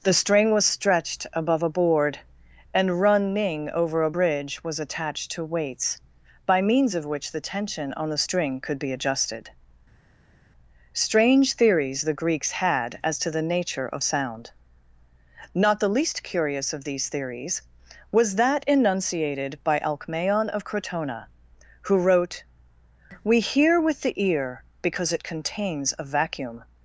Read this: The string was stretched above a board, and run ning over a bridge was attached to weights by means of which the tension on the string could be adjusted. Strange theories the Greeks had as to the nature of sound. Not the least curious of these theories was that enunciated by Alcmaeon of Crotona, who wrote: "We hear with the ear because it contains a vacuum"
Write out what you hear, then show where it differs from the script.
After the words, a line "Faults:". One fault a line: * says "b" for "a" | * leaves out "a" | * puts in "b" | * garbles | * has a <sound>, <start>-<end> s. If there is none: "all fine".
The string was stretched above a board, and run ning over a bridge was attached to weights by means of which the tension on the string could be adjusted. Strange theories the Greeks had as to the nature of sound. Not the least curious of these theories was that enunciated by Alcmaeon of Crotona, who wrote: "We hear with the ear because it contains a vacuum"
Faults:
all fine